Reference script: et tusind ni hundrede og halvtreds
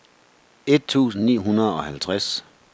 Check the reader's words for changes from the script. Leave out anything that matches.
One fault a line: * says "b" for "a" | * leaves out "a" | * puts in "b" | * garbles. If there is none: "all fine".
all fine